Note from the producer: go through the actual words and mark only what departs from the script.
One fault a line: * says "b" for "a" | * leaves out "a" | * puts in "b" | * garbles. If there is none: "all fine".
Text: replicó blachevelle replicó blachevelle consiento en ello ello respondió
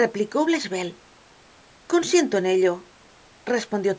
* leaves out "replicó blachevelle"
* leaves out "ello"